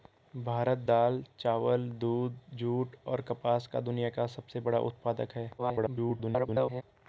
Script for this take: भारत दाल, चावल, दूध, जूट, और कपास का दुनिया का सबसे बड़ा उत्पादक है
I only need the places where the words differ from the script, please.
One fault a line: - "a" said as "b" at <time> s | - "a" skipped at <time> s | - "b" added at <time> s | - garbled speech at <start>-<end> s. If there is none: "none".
- garbled speech at 5.6-6.8 s